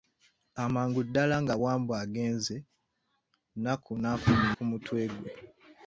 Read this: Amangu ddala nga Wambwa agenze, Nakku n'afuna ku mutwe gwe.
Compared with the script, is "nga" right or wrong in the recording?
right